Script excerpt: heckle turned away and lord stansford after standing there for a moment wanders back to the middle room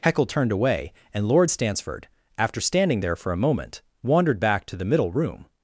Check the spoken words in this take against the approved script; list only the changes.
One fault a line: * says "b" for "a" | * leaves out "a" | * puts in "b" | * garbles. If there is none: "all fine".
* says "wandered" for "wanders"